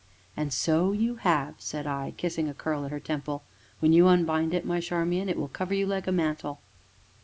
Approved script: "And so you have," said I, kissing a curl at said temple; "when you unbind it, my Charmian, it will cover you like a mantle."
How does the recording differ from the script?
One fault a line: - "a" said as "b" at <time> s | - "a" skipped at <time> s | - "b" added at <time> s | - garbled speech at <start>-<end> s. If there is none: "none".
- "said" said as "her" at 2.9 s